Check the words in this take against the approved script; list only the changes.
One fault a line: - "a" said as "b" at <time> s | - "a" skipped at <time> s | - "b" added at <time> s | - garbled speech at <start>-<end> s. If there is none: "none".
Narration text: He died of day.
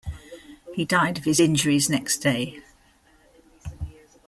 - "his injuries next" added at 1.3 s